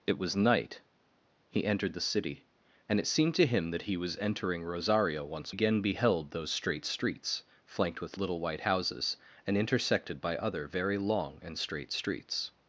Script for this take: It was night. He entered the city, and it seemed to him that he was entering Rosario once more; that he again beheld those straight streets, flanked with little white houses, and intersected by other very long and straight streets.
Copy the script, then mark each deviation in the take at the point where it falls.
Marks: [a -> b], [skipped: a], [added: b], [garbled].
It was night. He entered the city, and it seemed to him that he was entering Rosario once [skipped: more; that he] again beheld those straight streets, flanked with little white houses, and intersected by other very long and straight streets.